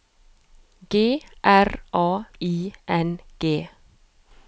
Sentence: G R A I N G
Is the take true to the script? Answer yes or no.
yes